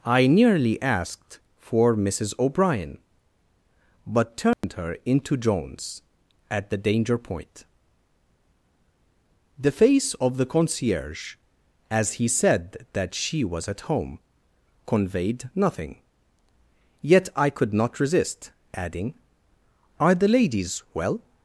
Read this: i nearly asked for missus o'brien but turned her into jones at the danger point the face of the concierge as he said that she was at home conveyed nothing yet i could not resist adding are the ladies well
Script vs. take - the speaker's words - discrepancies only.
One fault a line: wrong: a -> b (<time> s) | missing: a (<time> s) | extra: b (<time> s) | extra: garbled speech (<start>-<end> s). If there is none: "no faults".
no faults